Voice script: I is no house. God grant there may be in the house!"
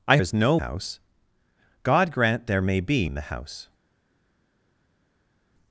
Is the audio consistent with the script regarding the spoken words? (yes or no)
yes